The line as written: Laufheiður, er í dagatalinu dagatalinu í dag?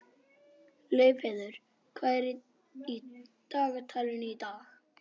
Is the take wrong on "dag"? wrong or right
right